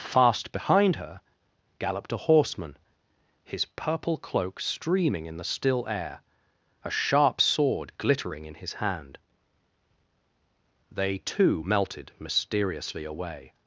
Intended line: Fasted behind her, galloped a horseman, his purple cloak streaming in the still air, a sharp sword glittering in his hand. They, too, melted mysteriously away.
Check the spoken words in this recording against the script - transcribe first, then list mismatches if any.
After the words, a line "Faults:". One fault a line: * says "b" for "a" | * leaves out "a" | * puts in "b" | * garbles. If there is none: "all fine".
Fast behind her, galloped a horseman, his purple cloak streaming in the still air, a sharp sword glittering in his hand. They, too, melted mysteriously away.
Faults:
* says "Fast" for "Fasted"